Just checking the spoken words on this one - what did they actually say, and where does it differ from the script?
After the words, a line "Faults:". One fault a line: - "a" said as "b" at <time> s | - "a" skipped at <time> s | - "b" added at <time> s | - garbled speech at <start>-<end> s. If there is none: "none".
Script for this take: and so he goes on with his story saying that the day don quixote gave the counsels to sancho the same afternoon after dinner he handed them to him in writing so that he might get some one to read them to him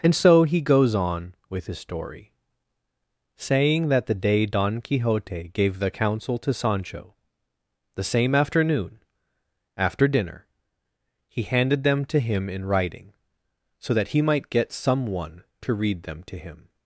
and so he goes on with his story saying that the day don quixote gave the counsel to sancho the same afternoon after dinner he handed them to him in writing so that he might get some one to read them to him
Faults:
- "counsels" said as "counsel" at 5.9 s